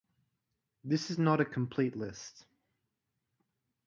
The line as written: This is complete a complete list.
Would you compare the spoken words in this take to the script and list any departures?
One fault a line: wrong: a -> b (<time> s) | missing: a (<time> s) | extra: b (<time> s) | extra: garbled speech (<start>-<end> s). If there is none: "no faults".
wrong: complete -> not (1.2 s)